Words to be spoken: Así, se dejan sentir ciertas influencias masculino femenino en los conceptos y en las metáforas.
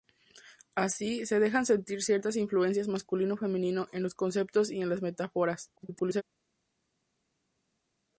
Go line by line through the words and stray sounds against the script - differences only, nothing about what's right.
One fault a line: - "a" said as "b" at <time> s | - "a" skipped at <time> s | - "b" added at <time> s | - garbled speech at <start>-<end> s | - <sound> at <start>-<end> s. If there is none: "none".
- garbled speech at 5.8-6.2 s